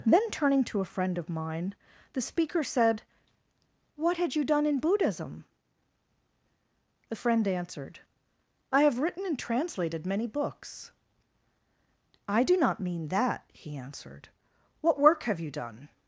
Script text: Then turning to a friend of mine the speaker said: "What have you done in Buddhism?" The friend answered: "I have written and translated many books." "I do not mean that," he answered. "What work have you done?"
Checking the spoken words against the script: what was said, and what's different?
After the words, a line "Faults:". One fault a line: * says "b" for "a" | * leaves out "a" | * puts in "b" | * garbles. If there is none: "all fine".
Then turning to a friend of mine the speaker said: "What had you done in Buddhism?" The friend answered: "I have written and translated many books." "I do not mean that," he answered. "What work have you done?"
Faults:
* says "had" for "have"